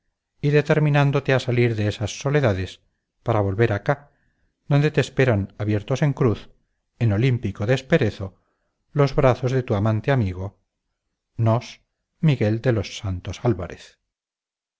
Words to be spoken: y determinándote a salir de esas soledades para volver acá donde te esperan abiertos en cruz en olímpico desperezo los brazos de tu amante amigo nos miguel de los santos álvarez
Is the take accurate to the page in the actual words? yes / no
yes